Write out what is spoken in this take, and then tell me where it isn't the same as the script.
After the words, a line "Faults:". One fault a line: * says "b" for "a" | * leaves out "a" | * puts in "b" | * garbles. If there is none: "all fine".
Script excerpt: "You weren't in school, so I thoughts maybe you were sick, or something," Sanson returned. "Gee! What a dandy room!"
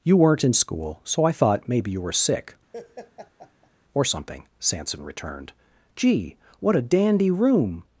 "You weren't in school, so I thought maybe you were sick, or something," Sanson returned. "Gee! What a dandy room!"
Faults:
* says "thought" for "thoughts"